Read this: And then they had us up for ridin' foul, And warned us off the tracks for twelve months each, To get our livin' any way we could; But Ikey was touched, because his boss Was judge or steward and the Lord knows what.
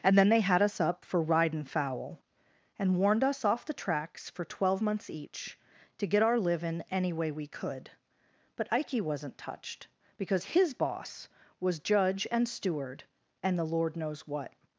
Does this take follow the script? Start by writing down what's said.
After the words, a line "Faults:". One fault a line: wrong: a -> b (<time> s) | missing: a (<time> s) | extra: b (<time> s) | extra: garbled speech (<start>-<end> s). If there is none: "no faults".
And then they had us up for ridin' foul, And warned us off the tracks for twelve months each, To get our livin' any way we could; But Ikey wasn't touched, because his boss Was judge and steward and the Lord knows what.
Faults:
wrong: was -> wasn't (9.0 s)
wrong: or -> and (12.3 s)